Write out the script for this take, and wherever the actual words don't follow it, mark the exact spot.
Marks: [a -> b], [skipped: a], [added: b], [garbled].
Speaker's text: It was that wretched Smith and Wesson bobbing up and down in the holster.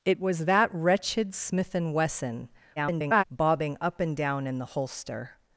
It was that wretched Smith and Wesson [garbled] bobbing up and down in the holster.